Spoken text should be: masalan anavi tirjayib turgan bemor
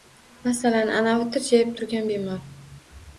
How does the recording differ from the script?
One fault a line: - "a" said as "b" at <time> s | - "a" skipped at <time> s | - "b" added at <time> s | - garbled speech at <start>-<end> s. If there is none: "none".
none